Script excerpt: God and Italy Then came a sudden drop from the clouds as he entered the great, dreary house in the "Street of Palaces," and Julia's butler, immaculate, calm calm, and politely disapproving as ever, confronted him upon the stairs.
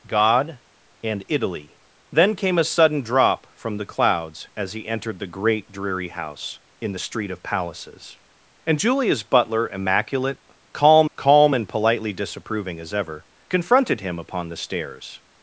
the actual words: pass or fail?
pass